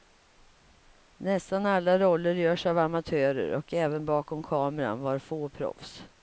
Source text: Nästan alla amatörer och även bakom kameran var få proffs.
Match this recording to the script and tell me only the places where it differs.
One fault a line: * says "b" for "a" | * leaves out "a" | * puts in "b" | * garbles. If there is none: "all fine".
* puts in "roller görs av"